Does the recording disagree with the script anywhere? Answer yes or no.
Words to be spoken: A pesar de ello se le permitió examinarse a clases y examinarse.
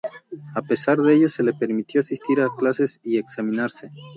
yes